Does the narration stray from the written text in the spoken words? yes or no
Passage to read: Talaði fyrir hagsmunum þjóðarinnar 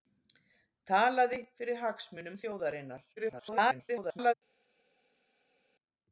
yes